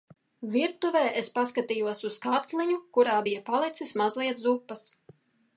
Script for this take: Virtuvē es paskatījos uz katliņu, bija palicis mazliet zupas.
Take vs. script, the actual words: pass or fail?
fail